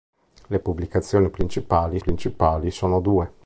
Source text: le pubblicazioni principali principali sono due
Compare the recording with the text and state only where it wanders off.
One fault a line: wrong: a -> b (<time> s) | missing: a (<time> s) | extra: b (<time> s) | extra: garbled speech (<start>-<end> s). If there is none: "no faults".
no faults